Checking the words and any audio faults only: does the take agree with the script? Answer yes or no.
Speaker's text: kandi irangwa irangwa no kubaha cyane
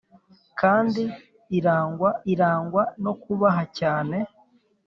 yes